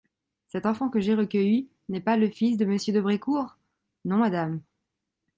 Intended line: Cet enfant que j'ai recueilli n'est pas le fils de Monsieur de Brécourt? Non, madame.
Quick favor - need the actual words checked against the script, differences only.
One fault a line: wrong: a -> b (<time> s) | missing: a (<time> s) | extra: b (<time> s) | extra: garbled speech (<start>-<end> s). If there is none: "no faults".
no faults